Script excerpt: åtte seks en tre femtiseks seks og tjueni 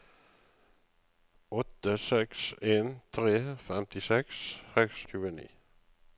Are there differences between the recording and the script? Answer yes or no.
no